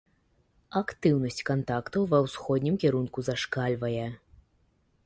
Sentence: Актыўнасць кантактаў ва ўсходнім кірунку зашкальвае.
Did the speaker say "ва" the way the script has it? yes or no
yes